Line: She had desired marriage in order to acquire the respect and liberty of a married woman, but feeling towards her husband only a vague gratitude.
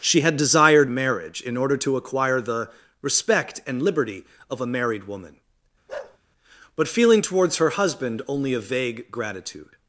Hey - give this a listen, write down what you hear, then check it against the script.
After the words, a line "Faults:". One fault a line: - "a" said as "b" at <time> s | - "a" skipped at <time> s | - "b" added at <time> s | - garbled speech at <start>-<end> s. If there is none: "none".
She had desired marriage in order to acquire the respect and liberty of a married woman, but feeling towards her husband only a vague gratitude.
Faults:
none